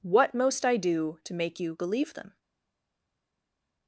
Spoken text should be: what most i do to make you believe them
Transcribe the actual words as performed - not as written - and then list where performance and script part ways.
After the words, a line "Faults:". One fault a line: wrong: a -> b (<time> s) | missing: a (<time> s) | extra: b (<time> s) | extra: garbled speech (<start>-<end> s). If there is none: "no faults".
what most i do to make you believe them
Faults:
no faults